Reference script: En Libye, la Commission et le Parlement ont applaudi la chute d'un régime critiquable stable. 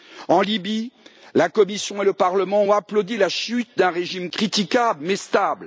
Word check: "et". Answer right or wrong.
right